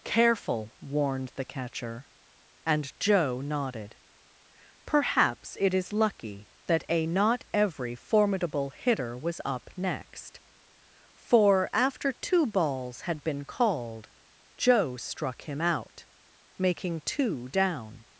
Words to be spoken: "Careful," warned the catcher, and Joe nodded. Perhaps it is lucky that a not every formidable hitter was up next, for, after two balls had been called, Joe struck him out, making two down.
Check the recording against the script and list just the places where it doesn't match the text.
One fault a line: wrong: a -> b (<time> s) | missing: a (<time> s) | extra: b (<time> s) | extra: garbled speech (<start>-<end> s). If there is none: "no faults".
no faults